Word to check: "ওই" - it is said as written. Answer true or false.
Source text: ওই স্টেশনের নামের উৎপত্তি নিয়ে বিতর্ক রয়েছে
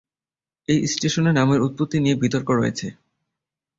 false